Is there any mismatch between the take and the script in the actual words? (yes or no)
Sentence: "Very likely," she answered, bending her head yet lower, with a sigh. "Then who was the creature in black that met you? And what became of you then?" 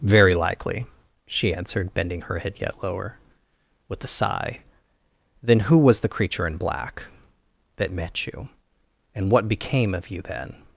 no